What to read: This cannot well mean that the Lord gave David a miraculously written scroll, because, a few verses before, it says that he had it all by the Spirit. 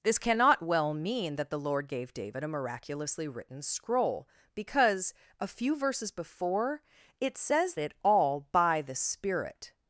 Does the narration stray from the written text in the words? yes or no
yes